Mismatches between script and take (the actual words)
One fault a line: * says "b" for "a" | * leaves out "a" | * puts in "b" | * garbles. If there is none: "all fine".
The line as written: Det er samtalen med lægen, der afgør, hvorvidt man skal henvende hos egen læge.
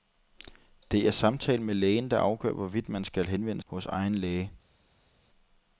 all fine